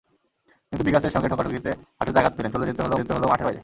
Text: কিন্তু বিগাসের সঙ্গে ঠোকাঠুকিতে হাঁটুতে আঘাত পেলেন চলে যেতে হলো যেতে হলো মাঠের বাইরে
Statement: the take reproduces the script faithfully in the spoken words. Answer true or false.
true